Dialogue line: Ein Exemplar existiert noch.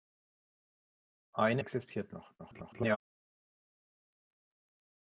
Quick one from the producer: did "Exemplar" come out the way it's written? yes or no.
no